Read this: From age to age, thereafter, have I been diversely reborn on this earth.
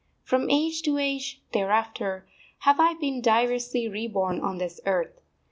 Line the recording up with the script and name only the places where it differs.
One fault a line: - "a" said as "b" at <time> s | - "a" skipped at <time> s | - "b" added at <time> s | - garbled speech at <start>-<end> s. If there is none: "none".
none